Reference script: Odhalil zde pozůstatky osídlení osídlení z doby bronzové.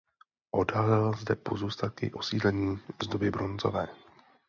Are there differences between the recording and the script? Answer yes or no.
yes